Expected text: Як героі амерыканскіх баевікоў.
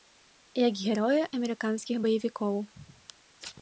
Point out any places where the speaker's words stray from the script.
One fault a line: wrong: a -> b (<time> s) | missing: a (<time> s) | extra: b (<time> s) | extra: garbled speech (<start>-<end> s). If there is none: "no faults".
no faults